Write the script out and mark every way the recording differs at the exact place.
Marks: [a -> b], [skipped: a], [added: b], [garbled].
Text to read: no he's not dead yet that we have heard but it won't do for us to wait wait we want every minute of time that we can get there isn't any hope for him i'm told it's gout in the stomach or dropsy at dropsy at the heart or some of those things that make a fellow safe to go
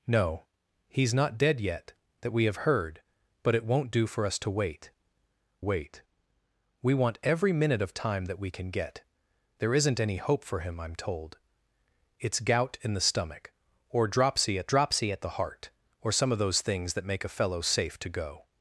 no he's not dead yet that we have heard but it won't do for us to wait wait we want every minute of time that we can get there isn't any hope for him i'm told it's gout in the stomach or dropsy at dropsy at the heart or some of those things that make a fellow safe to go